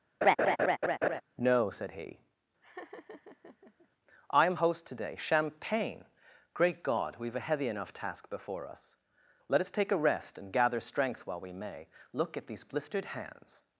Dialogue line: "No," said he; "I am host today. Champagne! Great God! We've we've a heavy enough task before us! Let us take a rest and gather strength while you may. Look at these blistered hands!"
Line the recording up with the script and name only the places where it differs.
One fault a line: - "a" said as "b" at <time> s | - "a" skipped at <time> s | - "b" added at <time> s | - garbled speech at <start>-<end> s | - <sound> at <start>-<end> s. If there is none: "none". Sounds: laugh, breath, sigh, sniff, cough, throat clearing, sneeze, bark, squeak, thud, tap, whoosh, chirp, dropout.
- laugh at 0.2-1.2 s
- laugh at 2.6-3.9 s
- "we've" skipped at 7.4 s
- "you" said as "we" at 11.4 s